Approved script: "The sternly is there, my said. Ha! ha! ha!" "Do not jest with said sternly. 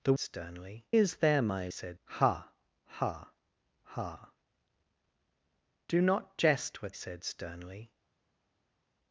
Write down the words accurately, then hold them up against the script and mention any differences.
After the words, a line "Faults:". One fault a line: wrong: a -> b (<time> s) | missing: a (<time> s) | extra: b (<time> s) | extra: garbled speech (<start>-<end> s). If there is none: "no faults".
"The sternly is there, my said. Ha! ha! ha!" "Do not jest with said sternly.
Faults:
no faults